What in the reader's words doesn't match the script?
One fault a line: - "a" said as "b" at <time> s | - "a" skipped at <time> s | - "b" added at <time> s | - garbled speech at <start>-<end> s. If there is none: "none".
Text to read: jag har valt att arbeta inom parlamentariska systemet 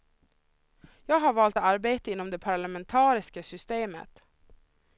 - "det" added at 2.3 s